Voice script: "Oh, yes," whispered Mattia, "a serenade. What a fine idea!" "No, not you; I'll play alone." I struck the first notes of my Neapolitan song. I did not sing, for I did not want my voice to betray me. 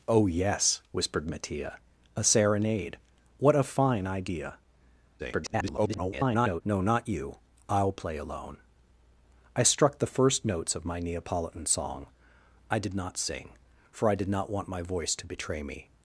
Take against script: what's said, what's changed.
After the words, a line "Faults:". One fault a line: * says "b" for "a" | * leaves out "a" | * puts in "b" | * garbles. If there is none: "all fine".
"Oh, yes," whispered Mattia, "a serenade. What a fine idea!" [garbled] "No, not you; I'll play alone." I struck the first notes of my Neapolitan song. I did not sing, for I did not want my voice to betray me.
Faults:
* garbles